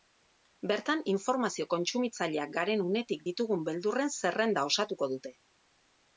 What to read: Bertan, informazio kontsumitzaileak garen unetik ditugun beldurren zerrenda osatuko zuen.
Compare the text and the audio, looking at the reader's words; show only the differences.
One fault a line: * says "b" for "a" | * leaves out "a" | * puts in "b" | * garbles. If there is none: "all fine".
* says "dute" for "zuen"